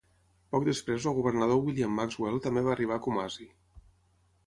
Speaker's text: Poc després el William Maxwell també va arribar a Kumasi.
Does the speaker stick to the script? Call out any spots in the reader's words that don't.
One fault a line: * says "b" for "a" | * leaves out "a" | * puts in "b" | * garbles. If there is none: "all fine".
* puts in "Governador"